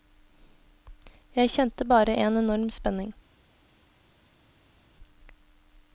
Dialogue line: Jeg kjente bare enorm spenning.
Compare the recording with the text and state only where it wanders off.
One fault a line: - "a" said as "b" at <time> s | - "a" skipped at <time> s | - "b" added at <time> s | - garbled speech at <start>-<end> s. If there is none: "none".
- "en" added at 2.1 s